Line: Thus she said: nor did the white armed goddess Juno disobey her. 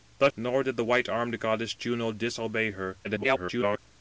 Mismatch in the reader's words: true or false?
true